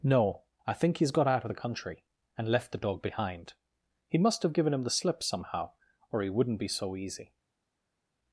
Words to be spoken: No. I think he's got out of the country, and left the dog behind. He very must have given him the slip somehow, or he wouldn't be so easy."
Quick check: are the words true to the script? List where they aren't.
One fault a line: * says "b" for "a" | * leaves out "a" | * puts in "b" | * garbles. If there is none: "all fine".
* leaves out "very"